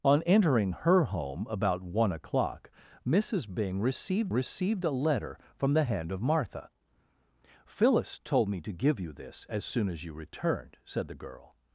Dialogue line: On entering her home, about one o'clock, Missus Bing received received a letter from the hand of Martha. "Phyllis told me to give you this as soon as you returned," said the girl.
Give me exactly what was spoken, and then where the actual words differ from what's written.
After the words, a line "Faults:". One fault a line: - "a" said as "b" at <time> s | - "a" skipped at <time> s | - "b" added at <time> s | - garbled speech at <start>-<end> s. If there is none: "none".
On entering her home, about one o'clock, Missus Bing received received a letter from the hand of Martha. "Phyllis told me to give you this as soon as you returned," said the girl.
Faults:
none